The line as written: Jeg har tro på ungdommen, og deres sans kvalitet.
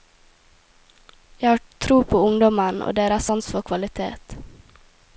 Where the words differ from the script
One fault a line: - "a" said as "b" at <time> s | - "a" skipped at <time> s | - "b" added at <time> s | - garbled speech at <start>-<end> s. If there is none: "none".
- "for" added at 3.5 s